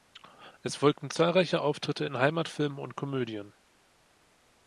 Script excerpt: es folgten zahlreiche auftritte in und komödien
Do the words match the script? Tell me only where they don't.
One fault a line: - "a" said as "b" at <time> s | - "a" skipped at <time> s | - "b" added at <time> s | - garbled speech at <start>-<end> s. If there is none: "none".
- "heimatfilmen" added at 2.2 s